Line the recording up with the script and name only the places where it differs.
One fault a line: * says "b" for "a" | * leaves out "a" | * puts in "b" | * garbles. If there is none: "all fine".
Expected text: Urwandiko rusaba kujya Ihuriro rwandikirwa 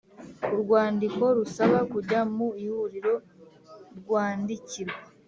* puts in "mu"